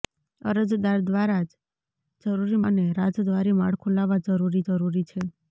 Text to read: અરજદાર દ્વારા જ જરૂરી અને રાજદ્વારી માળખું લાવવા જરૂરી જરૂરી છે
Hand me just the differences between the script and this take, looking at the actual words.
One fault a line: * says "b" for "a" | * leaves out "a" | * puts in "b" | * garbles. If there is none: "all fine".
all fine